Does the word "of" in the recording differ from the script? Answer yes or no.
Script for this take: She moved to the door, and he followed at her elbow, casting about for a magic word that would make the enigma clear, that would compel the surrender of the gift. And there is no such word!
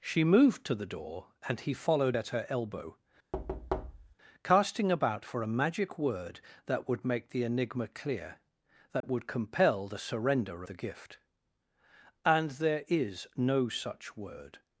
yes